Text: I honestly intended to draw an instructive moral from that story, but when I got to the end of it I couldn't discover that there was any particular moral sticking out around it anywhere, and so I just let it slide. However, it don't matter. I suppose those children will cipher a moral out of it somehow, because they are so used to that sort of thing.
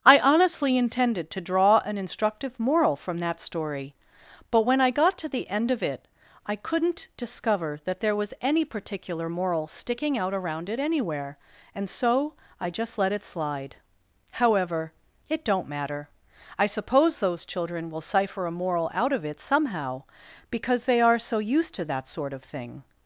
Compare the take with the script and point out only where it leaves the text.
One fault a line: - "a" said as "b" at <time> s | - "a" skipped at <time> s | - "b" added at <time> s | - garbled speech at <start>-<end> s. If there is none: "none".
none